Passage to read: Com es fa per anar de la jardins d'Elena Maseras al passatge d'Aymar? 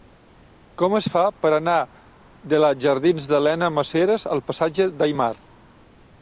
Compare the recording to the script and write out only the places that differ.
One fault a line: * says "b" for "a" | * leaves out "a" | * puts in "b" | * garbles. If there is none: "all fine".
all fine